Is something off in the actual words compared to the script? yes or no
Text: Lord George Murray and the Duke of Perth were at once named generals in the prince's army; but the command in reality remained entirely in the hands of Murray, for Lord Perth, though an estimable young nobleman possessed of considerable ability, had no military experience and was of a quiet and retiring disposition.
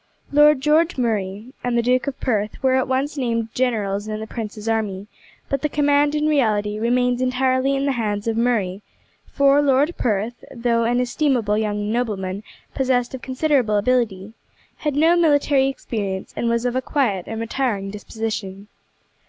no